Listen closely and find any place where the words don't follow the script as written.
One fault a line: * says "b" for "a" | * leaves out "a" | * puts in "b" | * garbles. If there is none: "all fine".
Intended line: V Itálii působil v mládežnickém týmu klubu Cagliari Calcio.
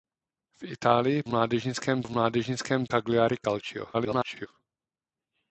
* says "mládežnickém" for "působil"
* leaves out "týmu klubu"
* garbles